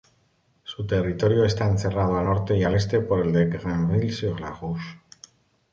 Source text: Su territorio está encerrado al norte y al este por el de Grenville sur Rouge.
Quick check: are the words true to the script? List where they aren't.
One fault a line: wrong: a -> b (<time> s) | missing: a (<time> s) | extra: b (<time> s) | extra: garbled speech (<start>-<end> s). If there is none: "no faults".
extra: la (4.4 s)